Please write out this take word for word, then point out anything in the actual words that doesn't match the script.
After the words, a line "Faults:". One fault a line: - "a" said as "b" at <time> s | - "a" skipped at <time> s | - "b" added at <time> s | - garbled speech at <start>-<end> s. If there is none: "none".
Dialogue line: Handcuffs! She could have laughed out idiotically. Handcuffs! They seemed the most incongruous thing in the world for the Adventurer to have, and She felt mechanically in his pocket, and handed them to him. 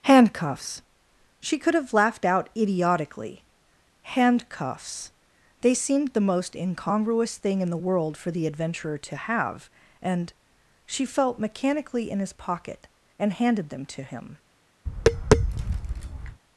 Handcuffs! She could have laughed out idiotically. Handcuffs! They seemed the most incongruous thing in the world for the Adventurer to have, and She felt mechanically in his pocket, and handed them to him.
Faults:
none